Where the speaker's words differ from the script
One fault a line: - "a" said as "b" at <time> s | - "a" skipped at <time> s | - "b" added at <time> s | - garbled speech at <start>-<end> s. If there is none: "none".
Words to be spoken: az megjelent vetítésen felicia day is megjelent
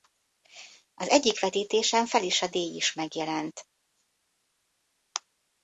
- "megjelent" said as "egyik" at 1.1 s